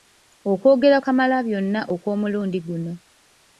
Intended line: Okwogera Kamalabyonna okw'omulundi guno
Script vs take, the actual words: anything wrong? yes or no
no